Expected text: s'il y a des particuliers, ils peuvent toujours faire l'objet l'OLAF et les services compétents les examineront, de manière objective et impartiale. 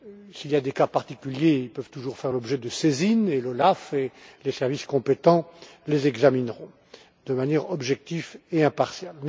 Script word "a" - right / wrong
right